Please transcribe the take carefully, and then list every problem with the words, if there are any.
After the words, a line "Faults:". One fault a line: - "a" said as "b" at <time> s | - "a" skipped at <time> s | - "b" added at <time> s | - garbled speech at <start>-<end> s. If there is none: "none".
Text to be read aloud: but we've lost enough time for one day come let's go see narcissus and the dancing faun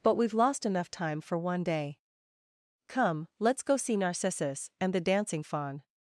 but we've lost enough time for one day come let's go see narcissus and the dancing faun
Faults:
none